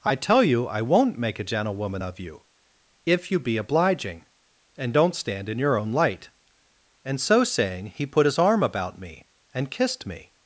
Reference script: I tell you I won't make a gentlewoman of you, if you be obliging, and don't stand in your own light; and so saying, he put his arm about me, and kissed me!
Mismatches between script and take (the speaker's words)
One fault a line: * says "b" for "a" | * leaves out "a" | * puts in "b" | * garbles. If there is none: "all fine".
all fine